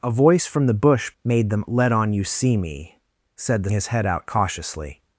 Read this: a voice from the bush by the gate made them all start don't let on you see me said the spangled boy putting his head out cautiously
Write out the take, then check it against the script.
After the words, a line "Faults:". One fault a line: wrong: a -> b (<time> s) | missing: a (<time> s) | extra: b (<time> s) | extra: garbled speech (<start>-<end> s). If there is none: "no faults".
a voice from the bush made them let on you see me said the his head out cautiously
Faults:
missing: by the gate (1.1 s)
missing: all start don't (1.7 s)
missing: spangled boy putting (3.7 s)